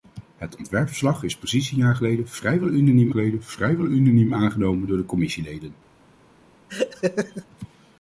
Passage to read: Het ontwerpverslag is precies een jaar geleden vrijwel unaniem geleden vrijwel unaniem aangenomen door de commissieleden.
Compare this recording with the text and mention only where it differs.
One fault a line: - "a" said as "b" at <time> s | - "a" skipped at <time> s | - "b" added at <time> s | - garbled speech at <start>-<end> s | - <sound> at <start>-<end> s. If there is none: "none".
- laugh at 6.7-7.5 s